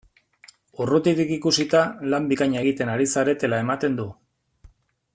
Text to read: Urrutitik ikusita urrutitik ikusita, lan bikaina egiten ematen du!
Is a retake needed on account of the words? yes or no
yes